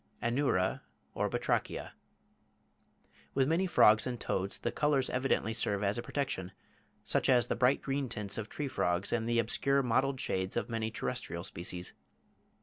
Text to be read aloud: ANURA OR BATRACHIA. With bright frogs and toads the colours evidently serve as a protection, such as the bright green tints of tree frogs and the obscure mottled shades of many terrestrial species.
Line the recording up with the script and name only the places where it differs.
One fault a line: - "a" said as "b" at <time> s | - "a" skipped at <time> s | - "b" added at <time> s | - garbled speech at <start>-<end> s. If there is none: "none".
- "bright" said as "many" at 3.5 s